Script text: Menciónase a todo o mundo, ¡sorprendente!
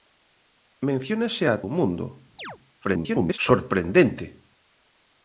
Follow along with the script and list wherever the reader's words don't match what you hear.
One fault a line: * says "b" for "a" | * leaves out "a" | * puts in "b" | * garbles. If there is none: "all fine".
* leaves out "todo"
* garbles